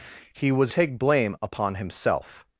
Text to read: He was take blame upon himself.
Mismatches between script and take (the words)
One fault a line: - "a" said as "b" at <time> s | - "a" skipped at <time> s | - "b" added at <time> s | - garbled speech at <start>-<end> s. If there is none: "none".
none